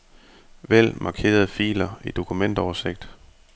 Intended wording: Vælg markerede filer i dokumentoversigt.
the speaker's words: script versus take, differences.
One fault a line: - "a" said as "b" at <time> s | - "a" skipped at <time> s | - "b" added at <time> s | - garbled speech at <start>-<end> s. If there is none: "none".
none